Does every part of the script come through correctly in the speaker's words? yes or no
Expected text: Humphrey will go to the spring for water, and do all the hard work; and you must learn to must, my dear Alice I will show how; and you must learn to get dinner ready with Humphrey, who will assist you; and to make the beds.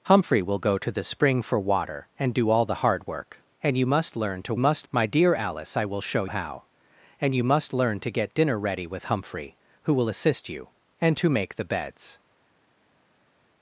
yes